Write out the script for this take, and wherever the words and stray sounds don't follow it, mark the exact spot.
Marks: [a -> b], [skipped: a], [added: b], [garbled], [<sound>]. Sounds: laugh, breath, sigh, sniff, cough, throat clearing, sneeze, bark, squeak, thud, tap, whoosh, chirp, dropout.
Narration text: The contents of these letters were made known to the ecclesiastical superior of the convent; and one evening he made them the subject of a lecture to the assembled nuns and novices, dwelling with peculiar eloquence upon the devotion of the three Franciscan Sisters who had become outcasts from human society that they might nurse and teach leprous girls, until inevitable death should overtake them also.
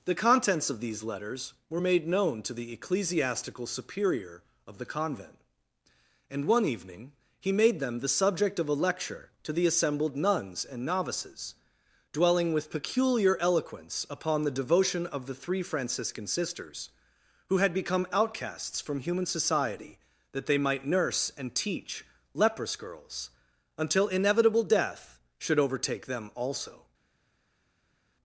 The contents of these letters were made known to the ecclesiastical superior of the convent; and one evening he made them the subject of a lecture to the assembled nuns and novices, dwelling with peculiar eloquence upon the devotion of the three Franciscan Sisters who had become outcasts from human society that they might nurse and teach leprous girls, until inevitable death should overtake them also.